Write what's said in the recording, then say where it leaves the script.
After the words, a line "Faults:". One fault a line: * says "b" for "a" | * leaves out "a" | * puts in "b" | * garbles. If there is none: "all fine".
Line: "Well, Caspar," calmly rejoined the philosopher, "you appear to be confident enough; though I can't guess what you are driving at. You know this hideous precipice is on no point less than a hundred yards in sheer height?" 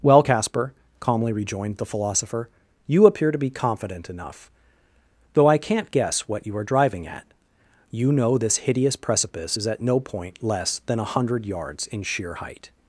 "Well, Caspar," calmly rejoined the philosopher, "you appear to be confident enough; though I can't guess what you are driving at. You know this hideous precipice is at no point less than a hundred yards in sheer height?"
Faults:
* says "at" for "on"